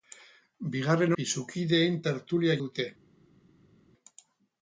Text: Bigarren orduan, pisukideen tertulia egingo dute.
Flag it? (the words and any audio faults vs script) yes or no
yes